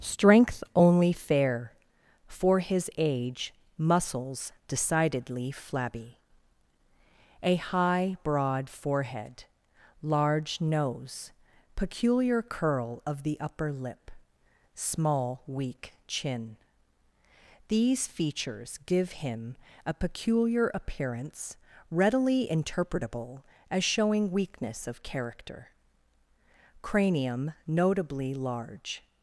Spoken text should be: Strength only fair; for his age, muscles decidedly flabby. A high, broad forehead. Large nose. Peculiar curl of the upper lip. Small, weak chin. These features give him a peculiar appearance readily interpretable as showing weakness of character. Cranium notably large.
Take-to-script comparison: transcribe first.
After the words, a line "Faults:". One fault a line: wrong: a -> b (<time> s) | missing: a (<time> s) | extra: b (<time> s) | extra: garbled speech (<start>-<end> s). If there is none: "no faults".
Strength only fair; for his age, muscles decidedly flabby. A high, broad forehead. Large nose. Peculiar curl of the upper lip. Small, weak chin. These features give him a peculiar appearance readily interpretable as showing weakness of character. Cranium notably large.
Faults:
no faults